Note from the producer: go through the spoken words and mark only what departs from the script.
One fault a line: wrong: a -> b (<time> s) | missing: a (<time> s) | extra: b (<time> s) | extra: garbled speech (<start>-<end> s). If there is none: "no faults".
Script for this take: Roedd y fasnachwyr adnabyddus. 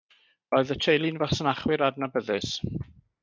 extra: teulu'n (0.8 s)